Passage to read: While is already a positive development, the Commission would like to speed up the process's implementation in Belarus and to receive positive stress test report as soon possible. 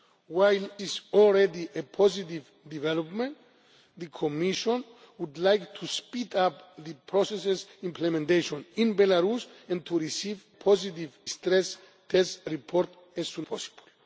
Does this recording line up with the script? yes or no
yes